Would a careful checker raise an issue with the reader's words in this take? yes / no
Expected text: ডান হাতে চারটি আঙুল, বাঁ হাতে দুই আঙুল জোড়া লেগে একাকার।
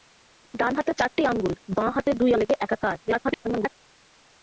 yes